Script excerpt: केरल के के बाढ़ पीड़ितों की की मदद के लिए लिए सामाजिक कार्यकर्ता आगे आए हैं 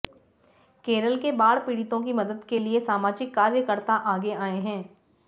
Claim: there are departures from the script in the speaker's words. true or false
true